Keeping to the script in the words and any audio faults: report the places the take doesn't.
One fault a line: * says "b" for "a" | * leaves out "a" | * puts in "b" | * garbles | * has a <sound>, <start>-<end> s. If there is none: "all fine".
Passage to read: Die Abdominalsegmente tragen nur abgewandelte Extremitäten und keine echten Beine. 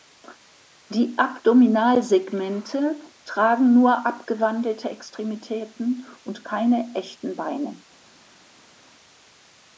all fine